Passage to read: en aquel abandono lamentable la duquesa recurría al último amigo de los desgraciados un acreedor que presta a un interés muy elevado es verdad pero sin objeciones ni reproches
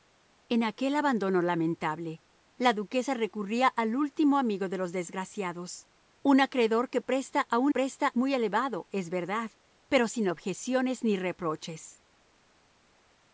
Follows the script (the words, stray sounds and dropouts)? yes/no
no